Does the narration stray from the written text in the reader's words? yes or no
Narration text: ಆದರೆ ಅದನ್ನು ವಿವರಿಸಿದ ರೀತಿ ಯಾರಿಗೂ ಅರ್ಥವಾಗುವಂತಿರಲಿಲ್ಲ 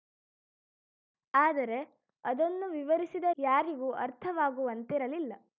yes